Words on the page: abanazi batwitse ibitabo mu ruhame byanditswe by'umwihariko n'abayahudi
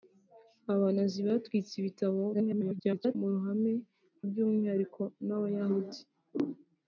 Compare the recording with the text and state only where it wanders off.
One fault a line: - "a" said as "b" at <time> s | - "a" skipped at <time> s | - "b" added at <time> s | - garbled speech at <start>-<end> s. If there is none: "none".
- garbled speech at 2.3-3.2 s
- "byanditswe" skipped at 3.7 s